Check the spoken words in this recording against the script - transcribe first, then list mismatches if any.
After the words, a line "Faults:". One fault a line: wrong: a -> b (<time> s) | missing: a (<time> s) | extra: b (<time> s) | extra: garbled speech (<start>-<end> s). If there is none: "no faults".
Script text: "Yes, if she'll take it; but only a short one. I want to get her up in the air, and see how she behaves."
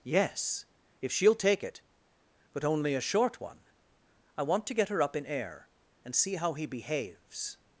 "Yes, if she'll take it; but only a short one. I want to get her up in air, and see how he behaves."
Faults:
missing: the (5.2 s)
wrong: she -> he (6.5 s)